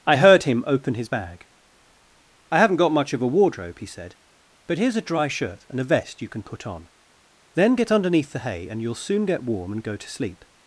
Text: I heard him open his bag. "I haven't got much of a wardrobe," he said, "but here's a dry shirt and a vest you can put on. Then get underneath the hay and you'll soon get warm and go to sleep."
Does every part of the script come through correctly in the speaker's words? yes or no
yes